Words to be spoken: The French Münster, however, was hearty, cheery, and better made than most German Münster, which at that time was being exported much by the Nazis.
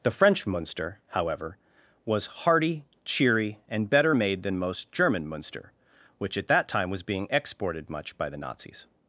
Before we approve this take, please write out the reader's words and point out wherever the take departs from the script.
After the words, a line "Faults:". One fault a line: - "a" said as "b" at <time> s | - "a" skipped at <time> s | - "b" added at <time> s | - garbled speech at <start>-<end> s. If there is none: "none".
The French Münster, however, was hearty, cheery, and better made than most German Münster, which at that time was being exported much by the Nazis.
Faults:
none